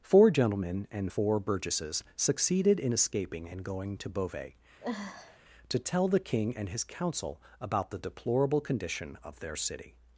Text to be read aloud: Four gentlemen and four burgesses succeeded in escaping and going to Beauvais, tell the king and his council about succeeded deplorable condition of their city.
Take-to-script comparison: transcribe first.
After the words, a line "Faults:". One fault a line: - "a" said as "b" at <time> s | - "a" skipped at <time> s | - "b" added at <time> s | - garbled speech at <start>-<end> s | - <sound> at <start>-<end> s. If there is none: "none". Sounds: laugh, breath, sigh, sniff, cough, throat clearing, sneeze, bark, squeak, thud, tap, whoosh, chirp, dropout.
Four gentlemen and four burgesses succeeded in escaping and going to Beauvais, to tell the king and his council about the deplorable condition of their city.
Faults:
- sniff at 4.8-5.4 s
- "to" added at 5.7 s
- "succeeded" said as "the" at 7.9 s